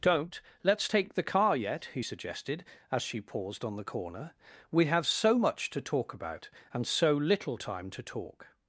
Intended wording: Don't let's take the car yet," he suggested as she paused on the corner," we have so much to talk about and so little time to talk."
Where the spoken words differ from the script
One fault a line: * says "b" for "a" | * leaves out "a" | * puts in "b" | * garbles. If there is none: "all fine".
all fine